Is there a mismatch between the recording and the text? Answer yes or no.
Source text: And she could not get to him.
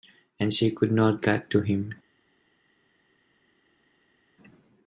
no